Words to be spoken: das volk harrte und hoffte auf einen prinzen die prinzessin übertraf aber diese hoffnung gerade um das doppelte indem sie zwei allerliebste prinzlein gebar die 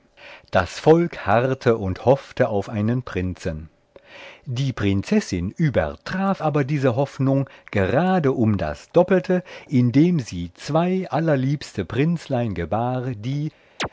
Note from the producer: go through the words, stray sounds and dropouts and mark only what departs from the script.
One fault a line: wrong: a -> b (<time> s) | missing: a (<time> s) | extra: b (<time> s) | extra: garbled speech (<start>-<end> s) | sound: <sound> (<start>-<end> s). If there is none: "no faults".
sound: chirp (13.8-13.9 s)